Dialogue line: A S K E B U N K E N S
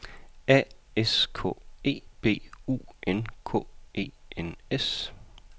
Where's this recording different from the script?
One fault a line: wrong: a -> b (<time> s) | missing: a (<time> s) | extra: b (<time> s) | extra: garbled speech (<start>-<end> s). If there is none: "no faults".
no faults